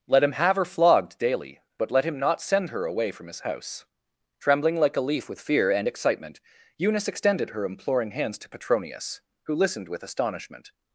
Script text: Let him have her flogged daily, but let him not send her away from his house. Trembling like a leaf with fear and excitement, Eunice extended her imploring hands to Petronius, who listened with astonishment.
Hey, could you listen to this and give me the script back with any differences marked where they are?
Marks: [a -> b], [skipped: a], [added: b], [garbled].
Let him have her flogged daily, but let him not send her away from his house. Trembling like a leaf with fear and excitement, Eunice extended her imploring hands to Petronius, who listened with astonishment.